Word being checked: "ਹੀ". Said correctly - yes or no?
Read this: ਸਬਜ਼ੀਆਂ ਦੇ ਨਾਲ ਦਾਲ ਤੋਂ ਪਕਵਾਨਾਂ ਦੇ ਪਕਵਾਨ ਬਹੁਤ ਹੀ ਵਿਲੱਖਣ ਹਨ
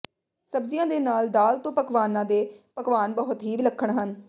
yes